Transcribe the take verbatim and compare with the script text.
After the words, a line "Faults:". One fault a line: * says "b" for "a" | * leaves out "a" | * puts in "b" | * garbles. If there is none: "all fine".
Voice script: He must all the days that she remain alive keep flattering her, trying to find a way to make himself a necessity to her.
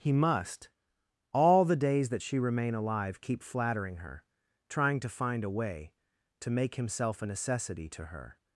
He must all the days that she remain alive keep flattering her, trying to find a way to make himself a necessity to her.
Faults:
all fine